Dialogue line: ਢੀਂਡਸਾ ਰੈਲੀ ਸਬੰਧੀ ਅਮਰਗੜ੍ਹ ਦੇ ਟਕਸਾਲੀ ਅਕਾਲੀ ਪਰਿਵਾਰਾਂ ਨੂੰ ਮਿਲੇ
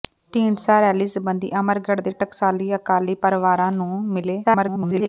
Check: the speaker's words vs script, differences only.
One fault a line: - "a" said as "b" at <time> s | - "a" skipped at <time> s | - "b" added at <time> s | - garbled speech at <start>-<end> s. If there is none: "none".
- garbled speech at 4.4-5.1 s